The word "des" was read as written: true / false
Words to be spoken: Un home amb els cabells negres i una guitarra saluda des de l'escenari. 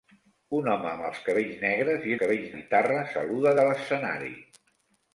false